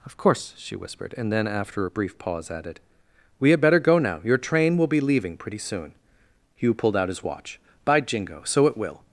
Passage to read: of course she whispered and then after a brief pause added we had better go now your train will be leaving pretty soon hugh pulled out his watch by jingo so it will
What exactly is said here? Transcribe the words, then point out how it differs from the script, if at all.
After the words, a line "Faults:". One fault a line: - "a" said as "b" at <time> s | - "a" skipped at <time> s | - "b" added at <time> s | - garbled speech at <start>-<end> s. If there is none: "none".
of course she whispered and then after a brief pause added we had better go now your train will be leaving pretty soon hugh pulled out his watch by jingo so it will
Faults:
none